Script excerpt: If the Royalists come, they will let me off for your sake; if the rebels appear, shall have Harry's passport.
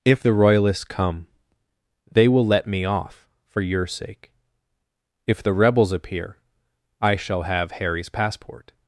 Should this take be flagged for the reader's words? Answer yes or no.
yes